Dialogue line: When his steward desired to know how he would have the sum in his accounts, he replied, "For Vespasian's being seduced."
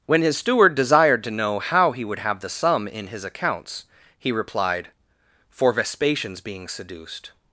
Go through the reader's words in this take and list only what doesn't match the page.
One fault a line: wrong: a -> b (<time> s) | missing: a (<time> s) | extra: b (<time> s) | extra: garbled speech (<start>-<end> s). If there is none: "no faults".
no faults